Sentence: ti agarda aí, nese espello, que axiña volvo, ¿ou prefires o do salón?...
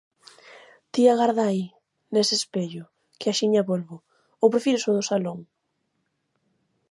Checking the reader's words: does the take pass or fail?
pass